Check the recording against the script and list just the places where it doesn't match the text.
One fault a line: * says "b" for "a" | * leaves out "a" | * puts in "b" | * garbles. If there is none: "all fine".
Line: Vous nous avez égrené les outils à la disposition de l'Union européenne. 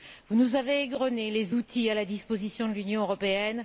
all fine